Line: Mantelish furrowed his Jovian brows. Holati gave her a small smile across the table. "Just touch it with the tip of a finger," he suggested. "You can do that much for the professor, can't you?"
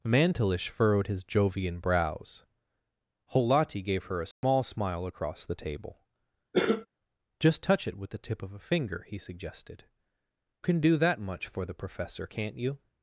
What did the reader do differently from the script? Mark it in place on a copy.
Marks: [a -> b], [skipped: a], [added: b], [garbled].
Mantelish furrowed his Jovian brows. Holati gave her a small smile across the table. "Just touch it with the tip of a finger," he suggested. [skipped: "You] can do that much for the professor, can't you?"